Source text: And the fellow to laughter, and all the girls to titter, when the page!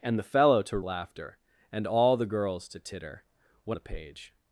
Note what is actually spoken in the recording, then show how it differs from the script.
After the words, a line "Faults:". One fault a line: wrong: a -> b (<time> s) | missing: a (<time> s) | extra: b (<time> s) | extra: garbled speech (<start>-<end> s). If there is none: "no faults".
And the fellow to laughter, and all the girls to titter, when the page!
Faults:
no faults